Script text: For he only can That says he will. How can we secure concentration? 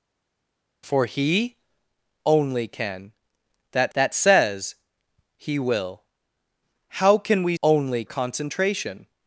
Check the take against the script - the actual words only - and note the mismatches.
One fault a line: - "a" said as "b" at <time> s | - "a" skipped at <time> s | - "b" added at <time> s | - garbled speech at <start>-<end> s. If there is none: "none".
- "That" added at 3.9 s
- "secure" said as "only" at 7.6 s